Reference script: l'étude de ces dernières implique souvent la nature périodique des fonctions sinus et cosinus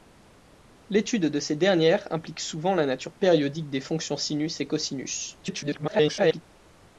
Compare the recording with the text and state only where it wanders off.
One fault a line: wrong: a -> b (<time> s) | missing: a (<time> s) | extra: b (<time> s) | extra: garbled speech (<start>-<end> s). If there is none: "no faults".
extra: garbled speech (5.4-6.4 s)